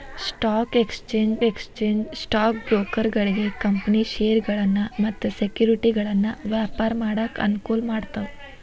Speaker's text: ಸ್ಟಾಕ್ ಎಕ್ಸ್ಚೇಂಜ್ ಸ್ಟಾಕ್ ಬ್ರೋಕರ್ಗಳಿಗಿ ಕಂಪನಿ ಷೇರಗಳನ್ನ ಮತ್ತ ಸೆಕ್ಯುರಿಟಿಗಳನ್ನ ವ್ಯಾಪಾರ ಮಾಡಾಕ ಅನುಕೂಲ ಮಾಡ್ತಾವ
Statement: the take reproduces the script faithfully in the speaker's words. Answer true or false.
false